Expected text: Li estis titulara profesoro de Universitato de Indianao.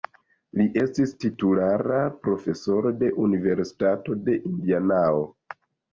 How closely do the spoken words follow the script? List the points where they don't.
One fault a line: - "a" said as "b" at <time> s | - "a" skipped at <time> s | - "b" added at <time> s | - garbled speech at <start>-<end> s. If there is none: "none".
none